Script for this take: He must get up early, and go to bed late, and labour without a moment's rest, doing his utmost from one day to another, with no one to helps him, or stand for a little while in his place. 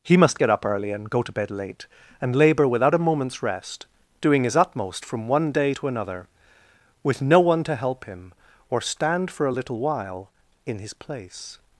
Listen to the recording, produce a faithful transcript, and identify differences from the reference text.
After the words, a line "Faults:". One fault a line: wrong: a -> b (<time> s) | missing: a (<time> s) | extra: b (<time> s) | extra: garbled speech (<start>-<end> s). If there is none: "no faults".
He must get up early, and go to bed late, and labour without a moment's rest, doing his utmost from one day to another, with no one to help him, or stand for a little while in his place.
Faults:
wrong: helps -> help (7.7 s)